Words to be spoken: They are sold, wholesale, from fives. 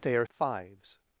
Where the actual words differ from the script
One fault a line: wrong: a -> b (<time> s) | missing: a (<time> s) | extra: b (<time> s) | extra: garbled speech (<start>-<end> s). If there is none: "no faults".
missing: sold wholesale from (0.2 s)